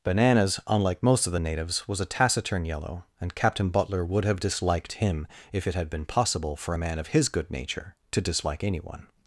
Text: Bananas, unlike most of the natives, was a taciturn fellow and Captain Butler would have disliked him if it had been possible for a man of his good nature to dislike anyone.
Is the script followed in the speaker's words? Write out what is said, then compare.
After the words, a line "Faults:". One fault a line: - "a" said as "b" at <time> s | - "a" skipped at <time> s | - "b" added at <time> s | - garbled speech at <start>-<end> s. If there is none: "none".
Bananas, unlike most of the natives, was a taciturn yellow and Captain Butler would have disliked him if it had been possible for a man of his good nature to dislike anyone.
Faults:
- "fellow" said as "yellow" at 2.6 s